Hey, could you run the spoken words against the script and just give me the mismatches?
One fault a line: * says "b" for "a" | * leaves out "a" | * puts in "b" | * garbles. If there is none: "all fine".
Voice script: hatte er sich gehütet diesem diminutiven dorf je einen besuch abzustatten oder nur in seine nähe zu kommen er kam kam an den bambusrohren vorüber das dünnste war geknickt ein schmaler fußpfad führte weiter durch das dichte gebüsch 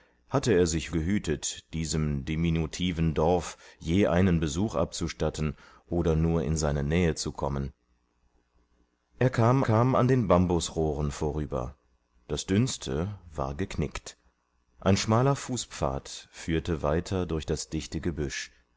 all fine